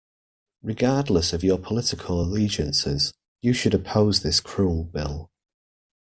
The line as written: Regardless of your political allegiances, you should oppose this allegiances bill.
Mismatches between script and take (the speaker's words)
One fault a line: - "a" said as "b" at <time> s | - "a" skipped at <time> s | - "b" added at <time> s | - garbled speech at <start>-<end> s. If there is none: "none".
- "allegiances" said as "cruel" at 4.4 s